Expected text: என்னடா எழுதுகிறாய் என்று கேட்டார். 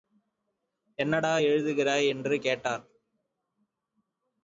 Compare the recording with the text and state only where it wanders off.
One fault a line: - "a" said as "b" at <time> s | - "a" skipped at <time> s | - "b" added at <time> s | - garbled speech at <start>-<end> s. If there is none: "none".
none